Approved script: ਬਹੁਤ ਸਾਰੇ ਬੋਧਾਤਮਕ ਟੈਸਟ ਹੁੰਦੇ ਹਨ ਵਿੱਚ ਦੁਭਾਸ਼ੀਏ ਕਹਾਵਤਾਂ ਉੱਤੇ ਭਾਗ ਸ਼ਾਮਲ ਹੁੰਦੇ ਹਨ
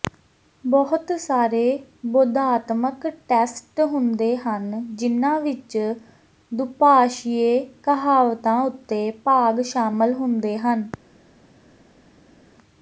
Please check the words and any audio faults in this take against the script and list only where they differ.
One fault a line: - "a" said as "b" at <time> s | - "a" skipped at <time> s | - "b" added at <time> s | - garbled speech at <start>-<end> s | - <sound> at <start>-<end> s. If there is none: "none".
- "ਜਿਨ੍ਹਾਂ" added at 4.9 s